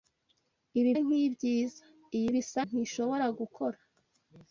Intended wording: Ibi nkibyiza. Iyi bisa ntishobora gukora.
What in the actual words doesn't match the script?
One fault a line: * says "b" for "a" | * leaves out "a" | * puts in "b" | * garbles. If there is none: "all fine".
all fine